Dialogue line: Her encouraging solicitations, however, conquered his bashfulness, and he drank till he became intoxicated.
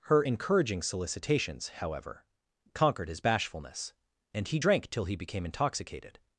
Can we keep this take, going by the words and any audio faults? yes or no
yes